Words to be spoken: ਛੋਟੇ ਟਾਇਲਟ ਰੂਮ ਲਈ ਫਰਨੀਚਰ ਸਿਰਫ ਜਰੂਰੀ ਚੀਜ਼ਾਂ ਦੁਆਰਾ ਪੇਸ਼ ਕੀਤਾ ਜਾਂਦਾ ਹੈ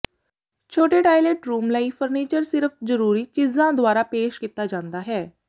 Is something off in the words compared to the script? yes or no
no